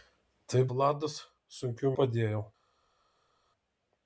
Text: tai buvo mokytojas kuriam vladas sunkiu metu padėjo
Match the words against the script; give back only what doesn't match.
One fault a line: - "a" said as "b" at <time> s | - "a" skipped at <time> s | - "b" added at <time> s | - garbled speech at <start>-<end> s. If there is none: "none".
- "buvo mokytojas kuriam" skipped at 0.6 s
- "metu" skipped at 1.9 s